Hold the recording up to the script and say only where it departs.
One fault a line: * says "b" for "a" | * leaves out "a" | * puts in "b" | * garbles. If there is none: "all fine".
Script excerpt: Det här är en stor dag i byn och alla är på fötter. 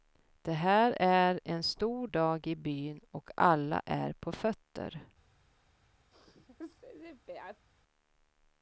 all fine